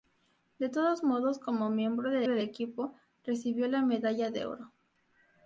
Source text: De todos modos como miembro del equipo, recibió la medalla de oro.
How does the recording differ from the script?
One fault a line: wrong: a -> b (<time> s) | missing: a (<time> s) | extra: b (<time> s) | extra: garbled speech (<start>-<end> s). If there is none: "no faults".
extra: del (2.2 s)